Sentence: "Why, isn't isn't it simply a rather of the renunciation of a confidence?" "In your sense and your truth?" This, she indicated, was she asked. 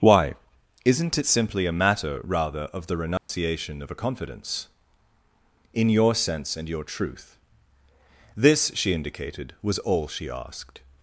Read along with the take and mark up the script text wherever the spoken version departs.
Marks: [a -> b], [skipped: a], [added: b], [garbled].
"Why, isn't [skipped: isn't] it simply a [added: matter] rather of the renunciation of a confidence?" "In your sense and your truth?" This, she indicated, was [added: all] she asked.